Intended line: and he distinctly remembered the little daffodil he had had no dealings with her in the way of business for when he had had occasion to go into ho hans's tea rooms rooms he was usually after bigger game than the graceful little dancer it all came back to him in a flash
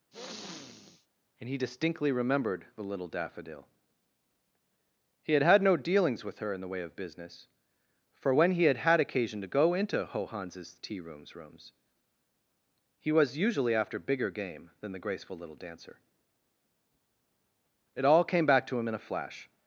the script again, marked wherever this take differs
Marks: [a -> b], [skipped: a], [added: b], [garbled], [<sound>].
[sniff] and he distinctly remembered the little daffodil he had had no dealings with her in the way of business for when he had had occasion to go into ho hans's tea rooms rooms he was usually after bigger game than the graceful little dancer it all came back to him in a flash